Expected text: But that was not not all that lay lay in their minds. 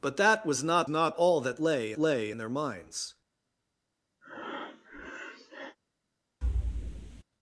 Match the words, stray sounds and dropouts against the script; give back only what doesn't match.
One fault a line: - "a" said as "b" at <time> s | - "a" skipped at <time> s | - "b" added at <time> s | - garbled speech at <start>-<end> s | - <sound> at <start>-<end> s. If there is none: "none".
- breath at 4.2-5.8 s
- thud at 6.4-7.2 s